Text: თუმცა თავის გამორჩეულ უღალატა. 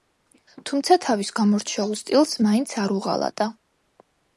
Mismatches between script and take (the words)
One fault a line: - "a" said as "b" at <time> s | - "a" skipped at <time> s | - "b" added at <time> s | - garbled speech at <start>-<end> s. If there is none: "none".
- "სტილს მაინც არ" added at 2.0 s